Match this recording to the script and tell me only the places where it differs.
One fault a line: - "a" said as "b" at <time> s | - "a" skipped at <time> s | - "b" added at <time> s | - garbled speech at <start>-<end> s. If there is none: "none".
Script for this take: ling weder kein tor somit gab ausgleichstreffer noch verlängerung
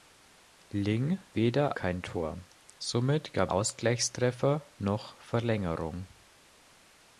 none